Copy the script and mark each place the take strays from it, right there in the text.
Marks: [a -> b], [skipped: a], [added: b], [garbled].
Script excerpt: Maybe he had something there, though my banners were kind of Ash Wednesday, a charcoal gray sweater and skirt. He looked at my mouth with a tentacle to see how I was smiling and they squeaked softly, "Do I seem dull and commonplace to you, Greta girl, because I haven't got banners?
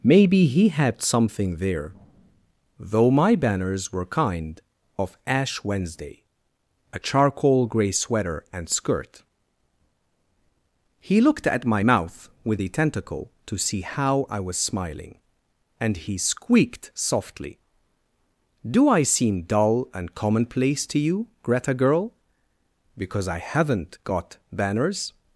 Maybe he had something there, though my banners were kind of Ash Wednesday, a charcoal gray sweater and skirt. He looked at my mouth with a tentacle to see how I was smiling and [they -> he] squeaked softly, "Do I seem dull and commonplace to you, Greta girl, because I haven't got banners?